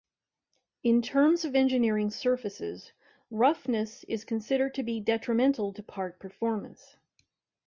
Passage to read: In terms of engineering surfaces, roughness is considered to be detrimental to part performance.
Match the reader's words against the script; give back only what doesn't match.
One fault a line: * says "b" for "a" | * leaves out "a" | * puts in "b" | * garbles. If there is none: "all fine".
all fine